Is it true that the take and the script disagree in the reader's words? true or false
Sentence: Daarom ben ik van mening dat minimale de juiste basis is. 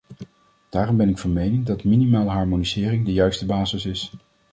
true